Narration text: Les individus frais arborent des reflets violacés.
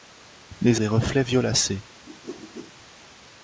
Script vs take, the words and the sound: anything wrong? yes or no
yes